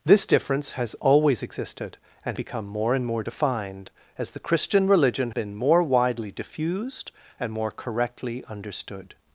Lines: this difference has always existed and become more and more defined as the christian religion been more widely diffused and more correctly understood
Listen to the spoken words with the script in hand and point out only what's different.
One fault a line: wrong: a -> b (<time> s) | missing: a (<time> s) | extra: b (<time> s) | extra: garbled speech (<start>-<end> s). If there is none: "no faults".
no faults